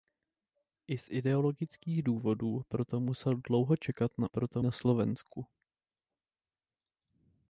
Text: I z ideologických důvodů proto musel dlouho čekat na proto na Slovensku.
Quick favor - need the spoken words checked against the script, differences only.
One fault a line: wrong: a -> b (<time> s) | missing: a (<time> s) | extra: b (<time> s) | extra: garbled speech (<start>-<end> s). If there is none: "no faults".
no faults